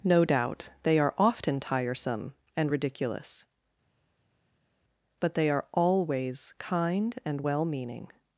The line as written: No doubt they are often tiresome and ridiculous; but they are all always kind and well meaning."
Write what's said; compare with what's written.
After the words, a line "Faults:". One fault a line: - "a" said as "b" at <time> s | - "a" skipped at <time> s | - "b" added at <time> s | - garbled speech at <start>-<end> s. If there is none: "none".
No doubt they are often tiresome and ridiculous; but they are always kind and well meaning."
Faults:
- "all" skipped at 5.7 s